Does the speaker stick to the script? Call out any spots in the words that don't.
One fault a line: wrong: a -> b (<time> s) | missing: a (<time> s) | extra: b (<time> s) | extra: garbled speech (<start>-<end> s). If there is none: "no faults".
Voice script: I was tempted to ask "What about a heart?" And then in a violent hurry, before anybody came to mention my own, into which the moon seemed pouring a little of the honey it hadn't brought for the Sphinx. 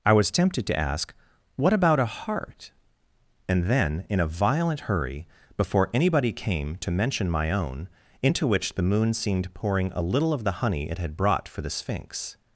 wrong: hadn't -> had (11.0 s)